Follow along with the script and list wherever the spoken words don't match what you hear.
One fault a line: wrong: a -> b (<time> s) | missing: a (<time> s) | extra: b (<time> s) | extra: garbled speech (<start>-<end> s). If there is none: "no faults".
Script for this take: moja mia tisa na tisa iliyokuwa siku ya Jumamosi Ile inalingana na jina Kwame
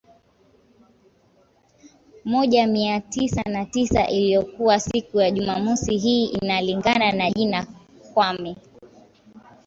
wrong: Ile -> Hii (6.0 s)